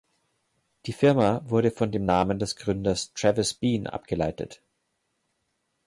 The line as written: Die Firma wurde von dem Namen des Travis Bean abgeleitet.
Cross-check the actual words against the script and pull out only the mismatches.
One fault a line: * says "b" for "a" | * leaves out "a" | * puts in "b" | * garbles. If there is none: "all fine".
* puts in "Gründers"